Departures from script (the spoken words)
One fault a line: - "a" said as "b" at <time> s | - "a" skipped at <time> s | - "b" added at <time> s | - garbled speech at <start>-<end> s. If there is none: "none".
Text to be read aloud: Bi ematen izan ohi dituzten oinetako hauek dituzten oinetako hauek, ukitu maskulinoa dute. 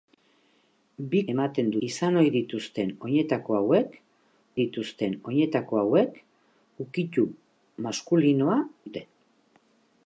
none